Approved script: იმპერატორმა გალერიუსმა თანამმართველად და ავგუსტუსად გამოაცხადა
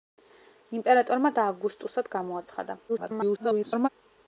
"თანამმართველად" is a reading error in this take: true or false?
true